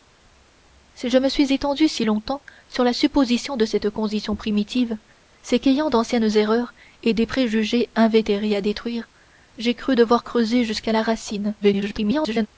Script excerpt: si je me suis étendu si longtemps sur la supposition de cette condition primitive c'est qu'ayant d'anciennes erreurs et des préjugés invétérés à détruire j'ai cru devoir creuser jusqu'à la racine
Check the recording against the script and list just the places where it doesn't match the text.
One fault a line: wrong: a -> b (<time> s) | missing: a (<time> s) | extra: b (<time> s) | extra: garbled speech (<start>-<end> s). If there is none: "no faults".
extra: garbled speech (11.6-12.5 s)